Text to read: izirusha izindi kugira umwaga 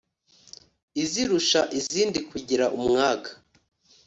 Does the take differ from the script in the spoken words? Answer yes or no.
no